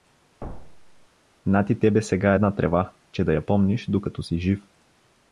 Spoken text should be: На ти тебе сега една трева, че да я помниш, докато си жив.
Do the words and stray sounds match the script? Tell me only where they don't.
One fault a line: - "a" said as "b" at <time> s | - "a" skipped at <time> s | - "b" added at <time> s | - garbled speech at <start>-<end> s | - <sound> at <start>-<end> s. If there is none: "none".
- thud at 0.4-1.1 s